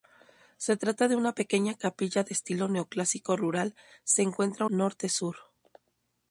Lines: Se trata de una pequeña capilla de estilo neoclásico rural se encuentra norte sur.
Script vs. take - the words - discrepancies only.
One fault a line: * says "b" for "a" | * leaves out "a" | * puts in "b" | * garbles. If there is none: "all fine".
all fine